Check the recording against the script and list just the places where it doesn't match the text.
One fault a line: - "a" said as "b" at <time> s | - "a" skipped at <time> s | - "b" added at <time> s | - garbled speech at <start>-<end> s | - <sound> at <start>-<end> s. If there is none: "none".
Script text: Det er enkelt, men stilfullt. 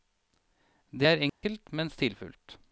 - dropout at 1.3-1.4 s